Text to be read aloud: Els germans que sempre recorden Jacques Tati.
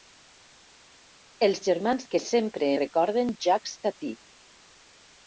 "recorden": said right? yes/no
yes